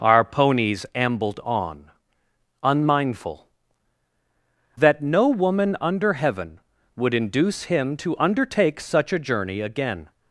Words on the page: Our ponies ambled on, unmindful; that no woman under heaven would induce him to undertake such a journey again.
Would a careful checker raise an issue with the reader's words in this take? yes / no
no